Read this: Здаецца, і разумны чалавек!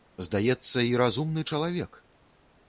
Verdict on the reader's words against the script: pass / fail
pass